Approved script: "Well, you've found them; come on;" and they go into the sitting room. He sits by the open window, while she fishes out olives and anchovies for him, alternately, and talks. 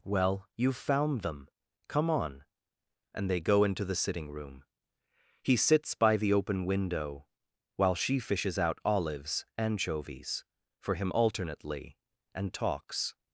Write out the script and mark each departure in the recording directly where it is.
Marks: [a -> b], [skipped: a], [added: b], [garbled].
"Well, you've found them; come on;" and they go into the sitting room. He sits by the open window, while she fishes out olives [skipped: and] anchovies for him, alternately, and talks.